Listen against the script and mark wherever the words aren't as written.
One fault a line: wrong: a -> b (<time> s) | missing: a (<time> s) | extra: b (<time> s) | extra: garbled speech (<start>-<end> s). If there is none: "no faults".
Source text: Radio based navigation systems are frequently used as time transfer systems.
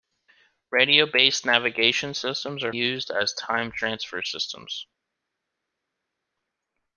missing: frequently (2.7 s)